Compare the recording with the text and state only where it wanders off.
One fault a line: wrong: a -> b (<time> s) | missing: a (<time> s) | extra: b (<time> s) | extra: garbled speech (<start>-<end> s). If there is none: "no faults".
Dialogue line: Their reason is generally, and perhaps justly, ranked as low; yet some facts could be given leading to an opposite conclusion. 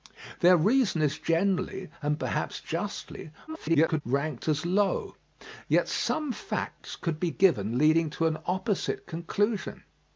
extra: garbled speech (3.5-4.0 s)